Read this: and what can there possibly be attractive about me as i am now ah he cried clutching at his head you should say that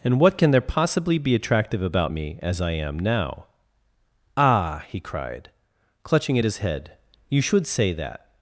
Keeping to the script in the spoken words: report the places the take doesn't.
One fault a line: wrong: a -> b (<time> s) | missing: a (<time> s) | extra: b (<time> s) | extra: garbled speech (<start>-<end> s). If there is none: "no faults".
no faults